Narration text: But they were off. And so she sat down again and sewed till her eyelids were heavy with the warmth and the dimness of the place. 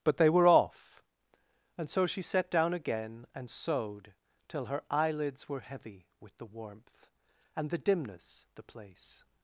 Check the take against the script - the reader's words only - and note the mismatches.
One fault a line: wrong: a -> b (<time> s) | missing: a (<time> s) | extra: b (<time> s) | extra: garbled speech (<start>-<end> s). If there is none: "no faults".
missing: of (8.5 s)